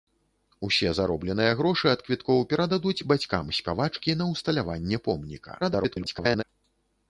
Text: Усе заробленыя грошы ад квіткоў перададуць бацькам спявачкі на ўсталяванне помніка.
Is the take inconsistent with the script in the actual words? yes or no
yes